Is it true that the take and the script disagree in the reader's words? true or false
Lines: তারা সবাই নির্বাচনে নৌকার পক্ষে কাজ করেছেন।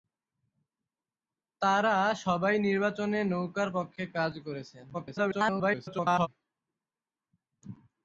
true